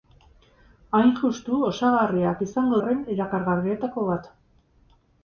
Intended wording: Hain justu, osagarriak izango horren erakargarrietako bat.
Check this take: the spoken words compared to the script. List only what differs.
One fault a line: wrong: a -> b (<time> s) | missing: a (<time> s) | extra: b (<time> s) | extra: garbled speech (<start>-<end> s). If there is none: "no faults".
no faults